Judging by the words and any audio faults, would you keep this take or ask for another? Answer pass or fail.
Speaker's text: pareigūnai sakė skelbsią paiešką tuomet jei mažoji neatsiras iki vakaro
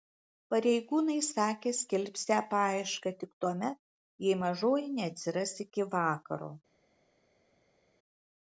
fail